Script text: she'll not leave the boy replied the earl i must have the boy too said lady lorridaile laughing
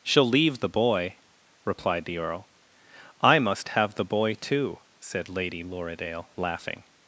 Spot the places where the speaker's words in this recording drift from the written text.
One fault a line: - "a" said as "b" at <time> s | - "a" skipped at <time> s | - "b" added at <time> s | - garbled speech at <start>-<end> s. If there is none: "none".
- "not" skipped at 0.3 s